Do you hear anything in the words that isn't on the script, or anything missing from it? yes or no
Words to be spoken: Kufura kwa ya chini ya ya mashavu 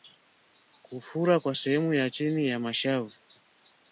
yes